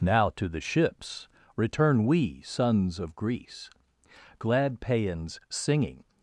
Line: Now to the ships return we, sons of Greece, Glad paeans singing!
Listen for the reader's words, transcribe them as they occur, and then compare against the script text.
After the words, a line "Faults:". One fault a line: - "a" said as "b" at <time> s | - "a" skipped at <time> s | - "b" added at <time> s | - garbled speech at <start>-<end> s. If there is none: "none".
Now to the ships return we, sons of Greece, Glad paeans singing!
Faults:
none